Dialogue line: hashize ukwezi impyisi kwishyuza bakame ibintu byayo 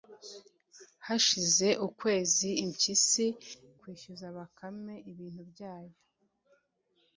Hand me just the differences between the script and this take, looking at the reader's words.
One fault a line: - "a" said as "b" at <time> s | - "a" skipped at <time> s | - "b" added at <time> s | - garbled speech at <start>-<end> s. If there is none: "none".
none